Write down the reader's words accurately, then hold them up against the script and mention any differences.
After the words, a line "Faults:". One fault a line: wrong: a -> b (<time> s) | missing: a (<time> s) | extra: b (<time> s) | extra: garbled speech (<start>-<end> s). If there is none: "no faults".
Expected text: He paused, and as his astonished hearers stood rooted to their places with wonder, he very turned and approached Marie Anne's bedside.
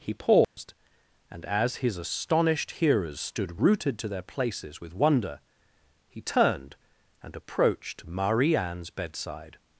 He paused, and as his astonished hearers stood rooted to their places with wonder, he turned and approached Marie Anne's bedside.
Faults:
missing: very (6.2 s)